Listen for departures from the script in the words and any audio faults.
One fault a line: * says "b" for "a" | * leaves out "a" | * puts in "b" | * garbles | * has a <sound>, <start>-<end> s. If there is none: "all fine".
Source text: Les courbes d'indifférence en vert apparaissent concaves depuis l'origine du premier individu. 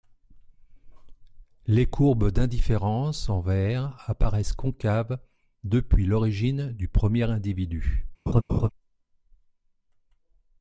* has a laugh, 8.3-8.7 s